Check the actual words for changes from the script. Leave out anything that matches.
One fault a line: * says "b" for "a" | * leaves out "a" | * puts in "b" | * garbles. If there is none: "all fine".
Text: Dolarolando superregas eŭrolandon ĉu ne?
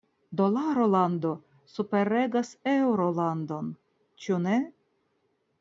all fine